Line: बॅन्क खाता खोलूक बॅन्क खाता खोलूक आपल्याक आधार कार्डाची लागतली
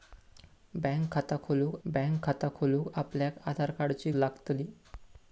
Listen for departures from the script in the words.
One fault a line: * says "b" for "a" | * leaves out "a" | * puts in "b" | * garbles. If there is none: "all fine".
all fine